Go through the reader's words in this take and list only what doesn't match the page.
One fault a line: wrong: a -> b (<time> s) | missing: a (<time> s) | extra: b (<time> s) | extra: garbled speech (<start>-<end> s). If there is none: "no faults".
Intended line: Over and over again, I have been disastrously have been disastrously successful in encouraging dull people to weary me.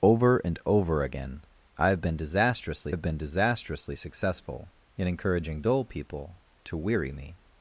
no faults